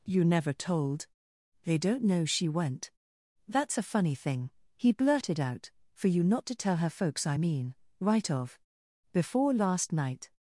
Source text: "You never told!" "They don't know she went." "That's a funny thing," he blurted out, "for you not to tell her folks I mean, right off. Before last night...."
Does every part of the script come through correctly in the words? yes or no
no